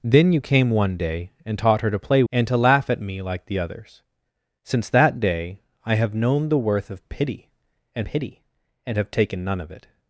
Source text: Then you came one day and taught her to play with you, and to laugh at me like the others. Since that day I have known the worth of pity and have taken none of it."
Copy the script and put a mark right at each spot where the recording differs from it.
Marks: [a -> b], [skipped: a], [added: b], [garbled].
Then you came one day and taught her to play [skipped: with you,] and to laugh at me like the others. Since that day I have known the worth of pity and [added: pity and] have taken none of it."